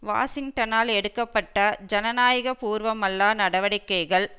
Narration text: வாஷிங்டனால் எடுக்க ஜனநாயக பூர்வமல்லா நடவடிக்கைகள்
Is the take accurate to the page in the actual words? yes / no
no